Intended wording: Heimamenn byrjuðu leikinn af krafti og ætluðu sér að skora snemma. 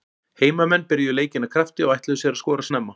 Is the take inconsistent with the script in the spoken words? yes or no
no